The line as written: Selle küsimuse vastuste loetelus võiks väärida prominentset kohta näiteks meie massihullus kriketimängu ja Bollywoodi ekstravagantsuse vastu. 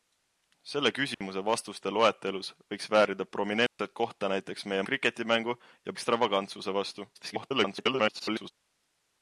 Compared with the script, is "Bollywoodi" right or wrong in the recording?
wrong